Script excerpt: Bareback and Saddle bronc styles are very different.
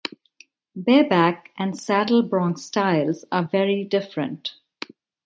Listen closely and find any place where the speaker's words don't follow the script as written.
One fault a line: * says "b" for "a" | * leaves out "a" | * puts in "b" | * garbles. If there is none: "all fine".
all fine